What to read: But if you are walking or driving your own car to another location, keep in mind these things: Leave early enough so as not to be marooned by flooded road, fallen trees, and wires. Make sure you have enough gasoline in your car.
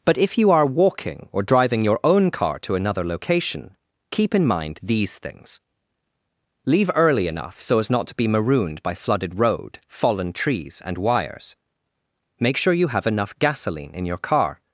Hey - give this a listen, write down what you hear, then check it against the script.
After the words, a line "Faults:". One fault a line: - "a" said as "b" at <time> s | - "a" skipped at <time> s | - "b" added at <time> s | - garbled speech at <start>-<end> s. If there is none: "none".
But if you are walking or driving your own car to another location, keep in mind these things: Leave early enough so as not to be marooned by flooded road, fallen trees, and wires. Make sure you have enough gasoline in your car.
Faults:
none